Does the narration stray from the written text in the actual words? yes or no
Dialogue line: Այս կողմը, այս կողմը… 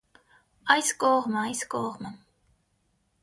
no